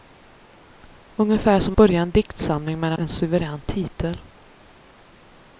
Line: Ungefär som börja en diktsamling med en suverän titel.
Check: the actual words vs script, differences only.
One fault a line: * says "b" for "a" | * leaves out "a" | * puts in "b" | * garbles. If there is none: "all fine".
all fine